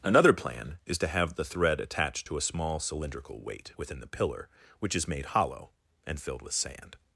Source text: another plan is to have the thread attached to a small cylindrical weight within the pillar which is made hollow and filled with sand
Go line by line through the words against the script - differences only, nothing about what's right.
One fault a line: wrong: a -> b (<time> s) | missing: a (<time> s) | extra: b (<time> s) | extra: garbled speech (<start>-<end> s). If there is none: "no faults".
no faults